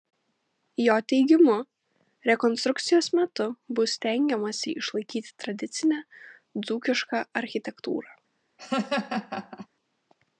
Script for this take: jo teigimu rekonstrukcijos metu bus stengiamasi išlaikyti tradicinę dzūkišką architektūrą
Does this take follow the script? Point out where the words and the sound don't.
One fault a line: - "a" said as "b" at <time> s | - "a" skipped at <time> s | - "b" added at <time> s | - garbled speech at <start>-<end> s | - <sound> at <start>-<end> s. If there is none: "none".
- laugh at 8.6-9.7 s